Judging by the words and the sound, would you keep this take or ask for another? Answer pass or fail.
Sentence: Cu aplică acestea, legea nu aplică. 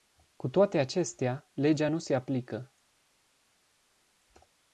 fail